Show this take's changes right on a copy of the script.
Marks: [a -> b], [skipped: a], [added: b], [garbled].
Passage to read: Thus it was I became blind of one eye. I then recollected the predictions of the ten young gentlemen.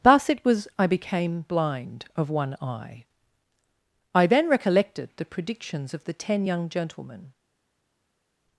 Thus it was I became blind of one eye. I then recollected the predictions of the ten young gentlemen.